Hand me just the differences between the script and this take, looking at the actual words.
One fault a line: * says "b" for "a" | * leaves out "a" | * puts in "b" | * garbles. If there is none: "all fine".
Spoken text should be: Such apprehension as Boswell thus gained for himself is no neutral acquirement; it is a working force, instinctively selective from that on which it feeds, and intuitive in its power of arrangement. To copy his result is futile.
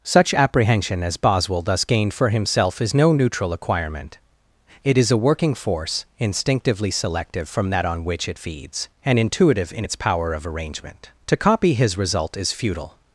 all fine